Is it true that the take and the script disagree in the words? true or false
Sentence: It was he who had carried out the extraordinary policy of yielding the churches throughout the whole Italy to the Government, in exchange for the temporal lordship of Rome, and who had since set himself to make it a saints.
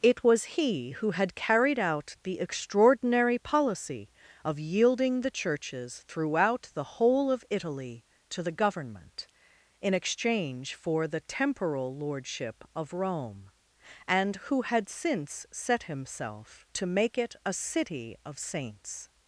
true